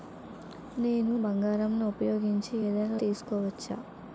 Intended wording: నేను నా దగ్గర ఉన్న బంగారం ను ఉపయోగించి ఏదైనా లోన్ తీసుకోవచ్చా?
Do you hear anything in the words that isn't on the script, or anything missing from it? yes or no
yes